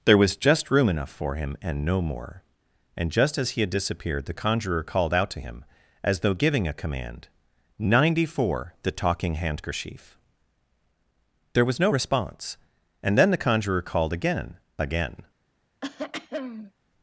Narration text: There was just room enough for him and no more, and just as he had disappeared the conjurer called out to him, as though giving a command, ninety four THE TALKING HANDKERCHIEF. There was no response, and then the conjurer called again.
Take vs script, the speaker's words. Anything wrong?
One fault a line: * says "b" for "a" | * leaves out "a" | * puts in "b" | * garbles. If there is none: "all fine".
* puts in "again"